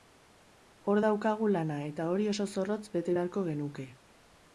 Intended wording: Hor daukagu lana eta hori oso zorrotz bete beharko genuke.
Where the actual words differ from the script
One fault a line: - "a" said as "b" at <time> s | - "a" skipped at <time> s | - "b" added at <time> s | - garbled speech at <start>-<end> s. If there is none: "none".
none